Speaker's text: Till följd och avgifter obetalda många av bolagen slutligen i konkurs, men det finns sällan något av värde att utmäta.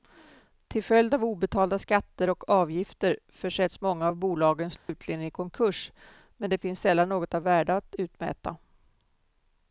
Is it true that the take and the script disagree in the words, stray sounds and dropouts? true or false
true